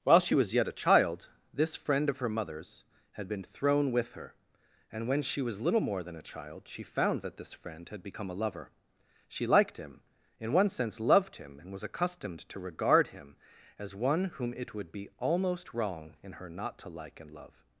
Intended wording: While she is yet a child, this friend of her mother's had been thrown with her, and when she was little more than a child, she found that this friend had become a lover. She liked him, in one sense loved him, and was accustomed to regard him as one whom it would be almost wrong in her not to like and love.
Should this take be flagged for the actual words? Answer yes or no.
yes